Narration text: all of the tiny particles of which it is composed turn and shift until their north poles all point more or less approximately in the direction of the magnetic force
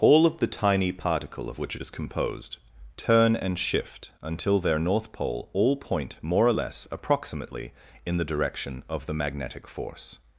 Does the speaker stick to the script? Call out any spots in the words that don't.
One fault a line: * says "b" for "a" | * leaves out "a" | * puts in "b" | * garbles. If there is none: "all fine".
* says "particle" for "particles"
* says "pole" for "poles"